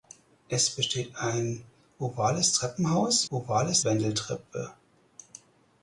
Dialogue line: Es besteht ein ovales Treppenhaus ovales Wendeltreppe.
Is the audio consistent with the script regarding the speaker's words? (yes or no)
yes